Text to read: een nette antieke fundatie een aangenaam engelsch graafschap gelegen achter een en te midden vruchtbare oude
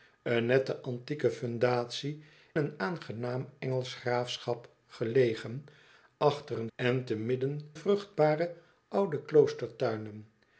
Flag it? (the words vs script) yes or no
no